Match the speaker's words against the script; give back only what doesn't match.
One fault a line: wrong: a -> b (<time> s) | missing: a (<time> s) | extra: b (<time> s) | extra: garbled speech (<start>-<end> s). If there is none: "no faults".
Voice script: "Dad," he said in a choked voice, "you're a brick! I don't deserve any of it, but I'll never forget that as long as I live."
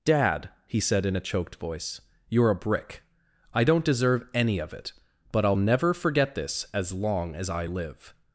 wrong: that -> this (6.3 s)